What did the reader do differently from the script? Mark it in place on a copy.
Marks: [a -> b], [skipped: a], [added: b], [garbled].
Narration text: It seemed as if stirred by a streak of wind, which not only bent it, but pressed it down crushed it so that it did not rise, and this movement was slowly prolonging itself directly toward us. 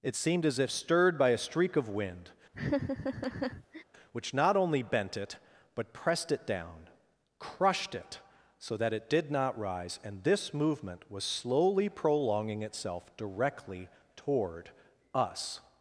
It seemed as if stirred by a streak of wind, which not only bent it, but pressed it down crushed it so that it did not rise, and this movement was slowly prolonging itself directly toward us.